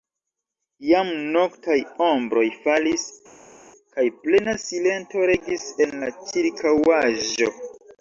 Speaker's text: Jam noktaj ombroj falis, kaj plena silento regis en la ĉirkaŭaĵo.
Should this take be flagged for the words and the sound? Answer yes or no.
no